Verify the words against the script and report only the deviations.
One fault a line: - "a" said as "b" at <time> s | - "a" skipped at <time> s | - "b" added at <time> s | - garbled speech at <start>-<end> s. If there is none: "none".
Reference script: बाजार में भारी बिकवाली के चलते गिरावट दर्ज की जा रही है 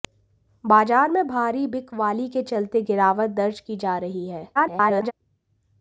- garbled speech at 4.6-5.1 s